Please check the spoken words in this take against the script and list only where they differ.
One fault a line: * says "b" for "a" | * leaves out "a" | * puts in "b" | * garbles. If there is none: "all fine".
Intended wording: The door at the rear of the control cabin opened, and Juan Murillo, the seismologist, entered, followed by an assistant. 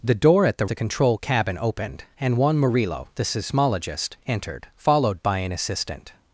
* leaves out "rear of"